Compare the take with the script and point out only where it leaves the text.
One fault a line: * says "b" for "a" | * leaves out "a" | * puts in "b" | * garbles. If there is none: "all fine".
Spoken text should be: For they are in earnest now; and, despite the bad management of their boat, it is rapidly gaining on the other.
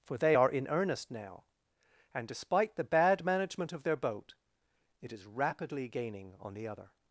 all fine